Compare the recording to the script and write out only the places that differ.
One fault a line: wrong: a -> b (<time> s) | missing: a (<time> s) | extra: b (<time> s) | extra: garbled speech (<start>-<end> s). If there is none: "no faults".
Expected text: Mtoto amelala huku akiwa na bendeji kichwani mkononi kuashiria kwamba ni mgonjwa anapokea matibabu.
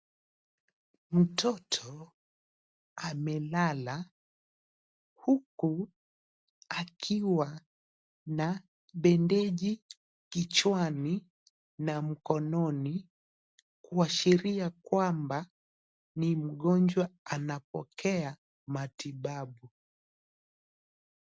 extra: na (11.8 s)